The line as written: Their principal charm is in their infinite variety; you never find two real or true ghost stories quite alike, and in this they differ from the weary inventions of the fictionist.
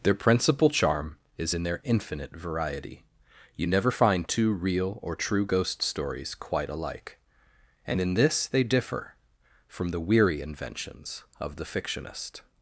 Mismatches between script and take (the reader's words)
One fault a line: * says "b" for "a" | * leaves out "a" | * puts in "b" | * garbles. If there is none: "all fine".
all fine